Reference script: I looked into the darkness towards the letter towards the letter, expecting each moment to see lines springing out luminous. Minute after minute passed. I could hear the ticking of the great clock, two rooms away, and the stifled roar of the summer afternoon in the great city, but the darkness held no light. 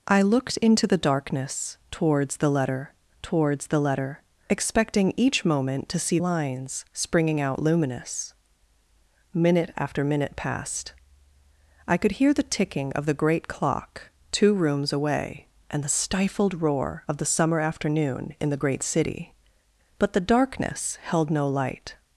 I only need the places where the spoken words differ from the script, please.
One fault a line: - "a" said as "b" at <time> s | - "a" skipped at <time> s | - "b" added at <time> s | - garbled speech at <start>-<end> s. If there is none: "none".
none